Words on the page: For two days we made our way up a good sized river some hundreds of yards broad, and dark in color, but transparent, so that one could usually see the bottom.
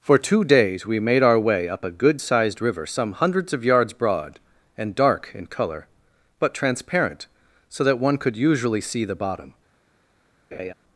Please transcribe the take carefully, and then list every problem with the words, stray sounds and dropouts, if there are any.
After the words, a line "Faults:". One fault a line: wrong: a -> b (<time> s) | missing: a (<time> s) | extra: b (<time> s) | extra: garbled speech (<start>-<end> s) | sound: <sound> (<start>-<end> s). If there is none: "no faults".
For two days we made our way up a good sized river some hundreds of yards broad, and dark in color, but transparent, so that one could usually see the bottom.
Faults:
sound: laugh (10.5-10.7 s)